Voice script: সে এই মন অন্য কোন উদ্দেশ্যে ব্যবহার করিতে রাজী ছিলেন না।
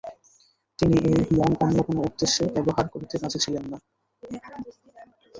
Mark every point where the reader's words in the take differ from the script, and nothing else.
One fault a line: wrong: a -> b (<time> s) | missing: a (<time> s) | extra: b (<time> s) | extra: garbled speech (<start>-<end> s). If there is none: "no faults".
wrong: সে -> তিনি (0.8 s)